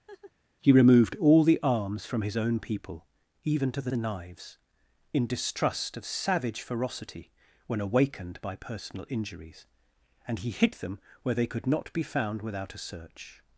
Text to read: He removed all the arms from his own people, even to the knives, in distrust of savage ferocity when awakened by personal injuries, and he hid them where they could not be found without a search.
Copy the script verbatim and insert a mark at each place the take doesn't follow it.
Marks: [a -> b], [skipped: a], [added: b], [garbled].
He removed all the arms from his own people, even to the [added: the] knives, in distrust of savage ferocity when awakened by personal injuries, and he hid them where they could not be found without a search.